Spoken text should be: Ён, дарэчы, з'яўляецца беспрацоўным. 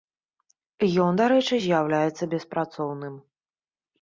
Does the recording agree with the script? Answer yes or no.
yes